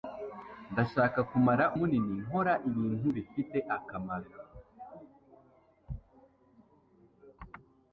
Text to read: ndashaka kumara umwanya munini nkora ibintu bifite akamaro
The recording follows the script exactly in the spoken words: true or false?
false